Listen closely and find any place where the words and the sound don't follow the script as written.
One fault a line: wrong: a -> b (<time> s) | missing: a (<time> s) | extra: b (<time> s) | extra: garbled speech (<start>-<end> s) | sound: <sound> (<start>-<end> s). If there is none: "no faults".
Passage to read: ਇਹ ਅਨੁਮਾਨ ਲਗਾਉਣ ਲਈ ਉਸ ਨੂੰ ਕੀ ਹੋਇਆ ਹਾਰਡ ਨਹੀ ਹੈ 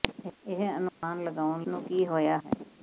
sound: dropout (0.9-1.0 s)
missing: ਲਈ ਉਸ (1.7 s)
missing: ਹਾਰਡ ਨਹੀ (2.4 s)